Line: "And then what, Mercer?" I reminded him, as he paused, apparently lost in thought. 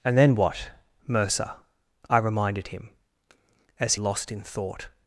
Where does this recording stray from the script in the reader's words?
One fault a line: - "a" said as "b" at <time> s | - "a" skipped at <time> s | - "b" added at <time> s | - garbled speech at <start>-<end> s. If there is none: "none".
- "he paused apparently" skipped at 3.9 s